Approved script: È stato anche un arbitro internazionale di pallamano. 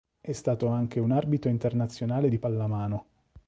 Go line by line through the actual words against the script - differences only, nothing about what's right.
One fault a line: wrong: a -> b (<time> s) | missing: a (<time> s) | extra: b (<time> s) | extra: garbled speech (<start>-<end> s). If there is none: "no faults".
no faults